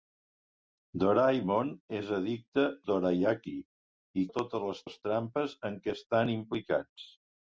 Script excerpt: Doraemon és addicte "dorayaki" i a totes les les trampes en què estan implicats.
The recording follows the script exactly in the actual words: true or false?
true